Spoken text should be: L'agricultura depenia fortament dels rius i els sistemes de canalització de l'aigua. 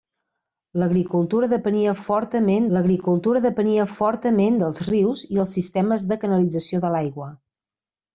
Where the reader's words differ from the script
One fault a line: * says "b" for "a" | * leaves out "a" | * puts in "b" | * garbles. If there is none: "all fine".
* puts in "l'agricultura depenia fortament"